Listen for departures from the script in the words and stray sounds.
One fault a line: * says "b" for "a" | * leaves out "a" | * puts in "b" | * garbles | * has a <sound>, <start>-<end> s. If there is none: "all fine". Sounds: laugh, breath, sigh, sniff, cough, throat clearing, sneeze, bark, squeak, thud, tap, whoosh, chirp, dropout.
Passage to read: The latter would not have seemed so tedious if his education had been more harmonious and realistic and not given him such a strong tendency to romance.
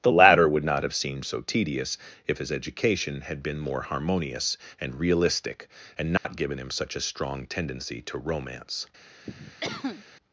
* has a dropout, 6.2-6.2 s
* has a cough, 9.2-10.0 s